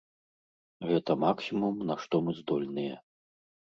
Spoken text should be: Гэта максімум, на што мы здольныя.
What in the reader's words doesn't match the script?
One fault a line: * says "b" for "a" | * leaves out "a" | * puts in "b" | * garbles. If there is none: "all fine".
all fine